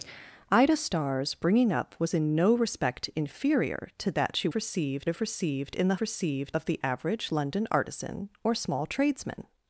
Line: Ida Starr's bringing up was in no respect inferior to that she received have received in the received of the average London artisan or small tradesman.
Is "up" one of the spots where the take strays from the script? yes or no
no